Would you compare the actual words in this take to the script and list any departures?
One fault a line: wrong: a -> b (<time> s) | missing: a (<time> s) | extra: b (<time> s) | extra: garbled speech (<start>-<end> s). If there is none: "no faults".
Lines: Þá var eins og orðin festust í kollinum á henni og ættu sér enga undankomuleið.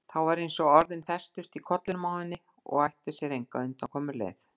no faults